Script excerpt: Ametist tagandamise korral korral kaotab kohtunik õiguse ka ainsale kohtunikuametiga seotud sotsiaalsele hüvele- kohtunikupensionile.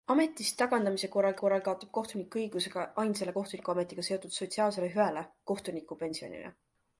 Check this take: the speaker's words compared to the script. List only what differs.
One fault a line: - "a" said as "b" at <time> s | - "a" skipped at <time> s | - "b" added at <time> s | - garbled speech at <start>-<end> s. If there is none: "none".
none